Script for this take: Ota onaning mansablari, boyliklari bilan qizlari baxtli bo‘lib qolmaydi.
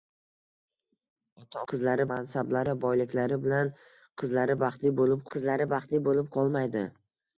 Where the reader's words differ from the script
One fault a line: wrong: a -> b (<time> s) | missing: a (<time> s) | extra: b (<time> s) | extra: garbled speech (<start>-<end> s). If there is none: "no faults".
wrong: onaning -> qizlari (1.7 s)
extra: qizlari baxtli bo‘lib (5.4 s)